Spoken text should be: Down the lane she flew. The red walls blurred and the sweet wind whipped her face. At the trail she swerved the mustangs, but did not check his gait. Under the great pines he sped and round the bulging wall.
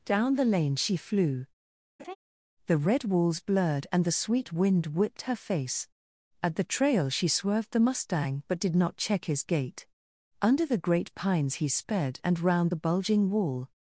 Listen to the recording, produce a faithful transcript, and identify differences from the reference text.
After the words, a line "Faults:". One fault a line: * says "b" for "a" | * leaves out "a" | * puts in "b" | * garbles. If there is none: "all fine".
Down the lane she flew. The red walls blurred and the sweet wind whipped her face. At the trail she swerved the mustang, but did not check his gait. Under the great pines he sped and round the bulging wall.
Faults:
* says "mustang" for "mustangs"